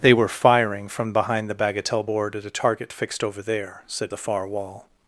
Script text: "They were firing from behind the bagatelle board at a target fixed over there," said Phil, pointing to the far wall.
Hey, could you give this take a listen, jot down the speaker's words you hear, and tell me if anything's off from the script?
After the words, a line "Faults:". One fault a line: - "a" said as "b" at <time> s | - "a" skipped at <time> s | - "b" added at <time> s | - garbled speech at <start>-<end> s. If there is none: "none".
"They were firing from behind the bagatelle board at a target fixed over there," said The far wall.
Faults:
- "Phil pointing to" skipped at 4.1 s